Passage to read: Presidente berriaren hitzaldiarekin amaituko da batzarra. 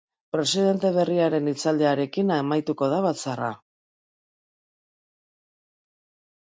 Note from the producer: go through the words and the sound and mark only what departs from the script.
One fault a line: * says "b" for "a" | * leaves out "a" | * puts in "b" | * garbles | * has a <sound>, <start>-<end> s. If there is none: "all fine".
all fine